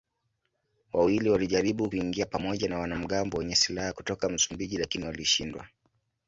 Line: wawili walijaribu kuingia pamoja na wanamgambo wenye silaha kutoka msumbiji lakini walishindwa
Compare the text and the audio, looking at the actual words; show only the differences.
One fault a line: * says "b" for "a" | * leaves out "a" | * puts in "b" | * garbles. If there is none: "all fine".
all fine